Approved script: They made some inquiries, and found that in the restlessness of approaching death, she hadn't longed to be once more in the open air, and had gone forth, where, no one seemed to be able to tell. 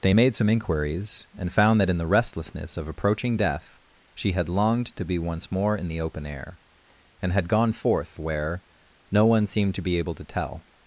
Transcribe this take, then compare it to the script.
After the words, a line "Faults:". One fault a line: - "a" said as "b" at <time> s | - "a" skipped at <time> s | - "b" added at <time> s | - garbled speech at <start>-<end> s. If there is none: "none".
They made some inquiries, and found that in the restlessness of approaching death, she had longed to be once more in the open air, and had gone forth, where, no one seemed to be able to tell.
Faults:
- "hadn't" said as "had" at 4.3 s